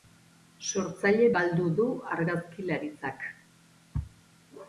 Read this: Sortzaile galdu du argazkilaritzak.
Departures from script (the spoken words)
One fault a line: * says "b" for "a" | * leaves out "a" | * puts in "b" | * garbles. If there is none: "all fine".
all fine